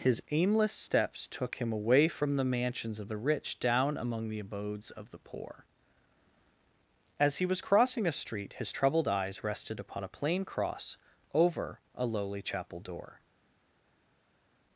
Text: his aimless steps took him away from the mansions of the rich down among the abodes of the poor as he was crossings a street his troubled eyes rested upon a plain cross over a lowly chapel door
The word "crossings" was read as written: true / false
false